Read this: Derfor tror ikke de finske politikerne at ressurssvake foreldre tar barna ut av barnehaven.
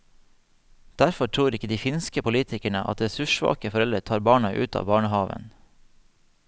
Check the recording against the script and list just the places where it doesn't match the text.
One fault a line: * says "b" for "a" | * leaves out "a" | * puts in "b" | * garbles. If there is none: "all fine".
all fine